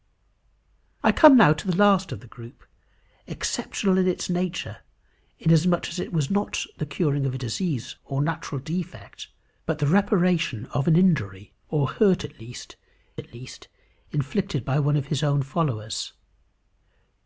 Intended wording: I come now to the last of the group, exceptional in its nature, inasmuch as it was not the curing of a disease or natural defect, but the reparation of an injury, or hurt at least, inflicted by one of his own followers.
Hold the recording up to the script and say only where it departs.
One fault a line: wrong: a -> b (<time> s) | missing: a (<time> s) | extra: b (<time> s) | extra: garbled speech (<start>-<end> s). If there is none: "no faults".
extra: at least (13.2 s)